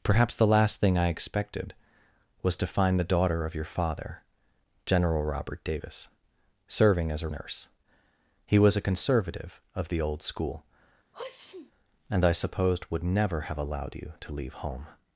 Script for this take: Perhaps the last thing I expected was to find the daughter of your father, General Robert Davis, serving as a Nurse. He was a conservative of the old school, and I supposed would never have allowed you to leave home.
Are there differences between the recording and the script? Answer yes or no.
no